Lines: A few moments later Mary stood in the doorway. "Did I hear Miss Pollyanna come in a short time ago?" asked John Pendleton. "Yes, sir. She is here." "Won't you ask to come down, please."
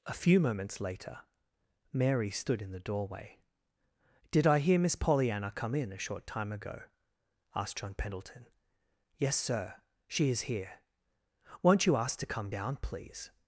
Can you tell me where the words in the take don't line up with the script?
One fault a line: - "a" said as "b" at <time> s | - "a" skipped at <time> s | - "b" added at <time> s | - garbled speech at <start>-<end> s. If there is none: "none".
none